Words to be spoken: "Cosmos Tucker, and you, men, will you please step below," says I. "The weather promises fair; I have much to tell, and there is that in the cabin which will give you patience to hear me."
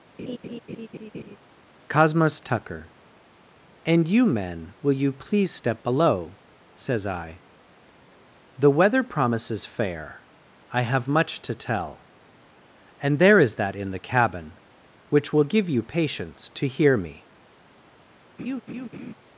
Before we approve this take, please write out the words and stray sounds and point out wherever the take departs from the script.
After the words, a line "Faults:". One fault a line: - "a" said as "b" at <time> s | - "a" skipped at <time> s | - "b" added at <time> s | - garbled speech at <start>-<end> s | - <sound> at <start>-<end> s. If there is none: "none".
"Cosmos Tucker, and you, men, will you please step below," says I. "The weather promises fair; I have much to tell, and there is that in the cabin which will give you patience to hear me."
Faults:
- laugh at 0.2-1.4 s
- laugh at 18.4-19.1 s